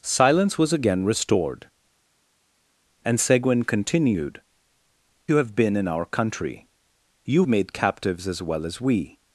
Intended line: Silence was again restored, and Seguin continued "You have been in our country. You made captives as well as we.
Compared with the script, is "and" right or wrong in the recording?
right